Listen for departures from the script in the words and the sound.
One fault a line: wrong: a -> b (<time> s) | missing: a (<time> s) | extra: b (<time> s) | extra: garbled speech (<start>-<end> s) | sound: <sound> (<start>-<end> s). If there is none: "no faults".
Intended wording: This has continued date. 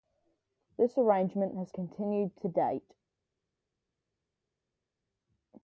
extra: arrangement (1.0 s)
extra: to (2.4 s)